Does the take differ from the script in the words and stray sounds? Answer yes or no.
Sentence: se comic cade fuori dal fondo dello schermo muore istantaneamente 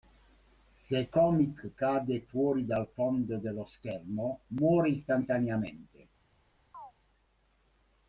yes